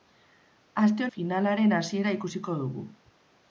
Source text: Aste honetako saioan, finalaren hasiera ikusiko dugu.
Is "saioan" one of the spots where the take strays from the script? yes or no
yes